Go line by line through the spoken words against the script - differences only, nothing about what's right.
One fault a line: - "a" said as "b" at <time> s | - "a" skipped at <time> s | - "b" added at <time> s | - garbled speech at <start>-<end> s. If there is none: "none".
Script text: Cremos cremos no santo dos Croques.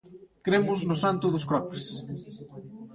- "cremos" skipped at 0.8 s